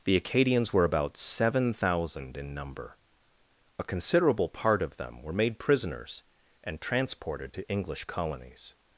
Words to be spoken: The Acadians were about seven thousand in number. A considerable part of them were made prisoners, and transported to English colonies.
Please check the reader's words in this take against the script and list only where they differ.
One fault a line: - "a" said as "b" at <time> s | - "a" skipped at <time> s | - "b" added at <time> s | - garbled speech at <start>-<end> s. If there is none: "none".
none